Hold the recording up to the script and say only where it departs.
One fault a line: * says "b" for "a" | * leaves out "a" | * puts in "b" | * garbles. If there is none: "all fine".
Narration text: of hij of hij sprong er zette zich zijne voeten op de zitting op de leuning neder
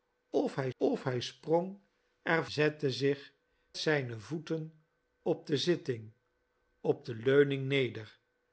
all fine